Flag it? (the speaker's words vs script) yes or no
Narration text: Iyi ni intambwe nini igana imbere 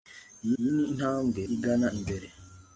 yes